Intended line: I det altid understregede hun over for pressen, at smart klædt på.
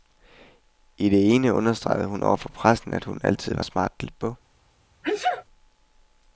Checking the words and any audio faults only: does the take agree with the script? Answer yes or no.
no